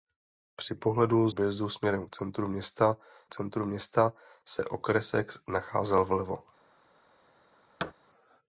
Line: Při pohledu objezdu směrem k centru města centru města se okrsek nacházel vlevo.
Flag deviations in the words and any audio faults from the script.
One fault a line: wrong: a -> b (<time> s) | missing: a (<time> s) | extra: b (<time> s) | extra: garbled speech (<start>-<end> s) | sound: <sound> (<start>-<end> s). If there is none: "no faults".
sound: thud (7.8-7.9 s)